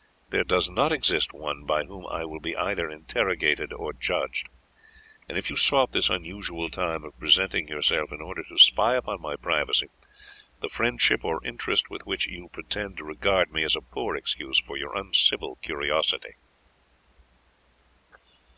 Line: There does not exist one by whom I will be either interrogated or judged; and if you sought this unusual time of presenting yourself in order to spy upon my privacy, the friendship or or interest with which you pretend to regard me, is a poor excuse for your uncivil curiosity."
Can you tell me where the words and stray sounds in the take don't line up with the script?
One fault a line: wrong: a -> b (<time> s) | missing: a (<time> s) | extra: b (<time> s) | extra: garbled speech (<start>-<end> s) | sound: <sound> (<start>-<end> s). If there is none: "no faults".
missing: or (11.4 s)